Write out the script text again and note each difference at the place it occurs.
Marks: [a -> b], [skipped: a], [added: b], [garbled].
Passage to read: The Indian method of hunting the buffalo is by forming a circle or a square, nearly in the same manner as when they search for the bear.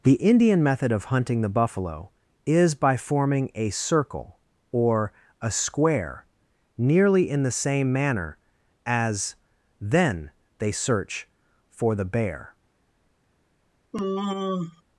The Indian method of hunting the buffalo is by forming a circle or a square, nearly in the same manner as [when -> then] they search for the bear.